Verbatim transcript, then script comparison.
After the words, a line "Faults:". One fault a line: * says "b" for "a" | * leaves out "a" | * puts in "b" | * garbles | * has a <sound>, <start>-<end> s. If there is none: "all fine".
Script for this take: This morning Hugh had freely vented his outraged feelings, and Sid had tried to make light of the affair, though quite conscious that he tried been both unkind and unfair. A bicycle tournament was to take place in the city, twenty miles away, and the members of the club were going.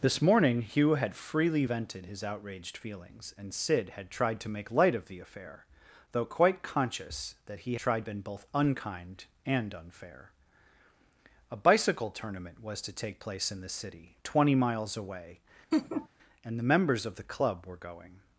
This morning Hugh had freely vented his outraged feelings, and Sid had tried to make light of the affair, though quite conscious that he tried been both unkind and unfair. A bicycle tournament was to take place in the city, twenty miles away, and the members of the club were going.
Faults:
* has a laugh, 15.7-16.1 s